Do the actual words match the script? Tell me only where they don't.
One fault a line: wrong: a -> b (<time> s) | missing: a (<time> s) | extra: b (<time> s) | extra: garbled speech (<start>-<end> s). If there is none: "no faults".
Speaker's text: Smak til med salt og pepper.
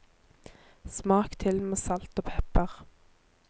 no faults